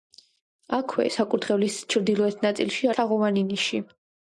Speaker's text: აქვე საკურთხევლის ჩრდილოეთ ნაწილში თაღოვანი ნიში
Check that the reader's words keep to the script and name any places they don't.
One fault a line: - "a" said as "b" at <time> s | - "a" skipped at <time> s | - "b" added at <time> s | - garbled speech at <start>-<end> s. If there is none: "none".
none